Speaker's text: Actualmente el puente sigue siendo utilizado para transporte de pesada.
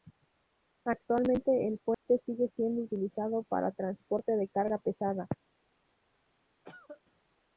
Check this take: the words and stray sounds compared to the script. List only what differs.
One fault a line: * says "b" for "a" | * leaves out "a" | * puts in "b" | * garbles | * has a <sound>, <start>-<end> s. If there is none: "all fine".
* has a dropout, 1.9-2.1 s
* puts in "carga"
* has a cough, 6.6-7.0 s